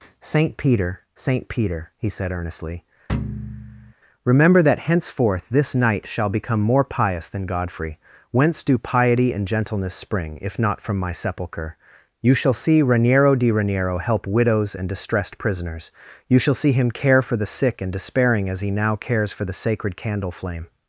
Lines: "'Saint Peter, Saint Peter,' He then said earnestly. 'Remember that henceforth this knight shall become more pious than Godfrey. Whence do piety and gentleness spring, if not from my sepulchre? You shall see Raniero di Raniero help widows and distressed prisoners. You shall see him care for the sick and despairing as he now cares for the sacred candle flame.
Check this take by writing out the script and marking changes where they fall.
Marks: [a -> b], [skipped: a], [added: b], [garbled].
"'Saint Peter, Saint Peter,' He [skipped: then] said earnestly. 'Remember that henceforth this knight shall become more pious than Godfrey. Whence do piety and gentleness spring, if not from my sepulchre? You shall see Raniero di Raniero help widows and distressed prisoners. You shall see him care for the sick and despairing as he now cares for the sacred candle flame.